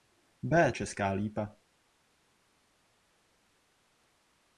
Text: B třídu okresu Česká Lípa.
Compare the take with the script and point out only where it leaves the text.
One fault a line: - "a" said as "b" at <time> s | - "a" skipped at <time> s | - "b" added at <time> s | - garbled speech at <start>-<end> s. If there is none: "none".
- "třídu okresu" skipped at 0.7 s